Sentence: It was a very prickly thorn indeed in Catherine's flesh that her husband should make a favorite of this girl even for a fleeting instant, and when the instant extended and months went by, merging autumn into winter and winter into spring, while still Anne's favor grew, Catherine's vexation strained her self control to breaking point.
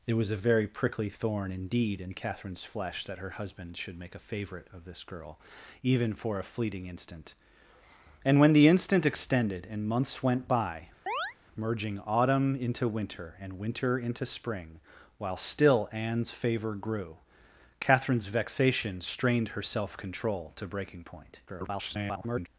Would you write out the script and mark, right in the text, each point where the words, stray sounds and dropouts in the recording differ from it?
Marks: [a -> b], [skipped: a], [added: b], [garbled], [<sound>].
It was a very prickly thorn indeed in Catherine's flesh that her husband should make a favorite of this girl even for a fleeting instant, and when the instant extended and months went by, [chirp] merging autumn into winter and winter into spring, while still Anne's favor grew, Catherine's vexation strained her self control to breaking point. [garbled]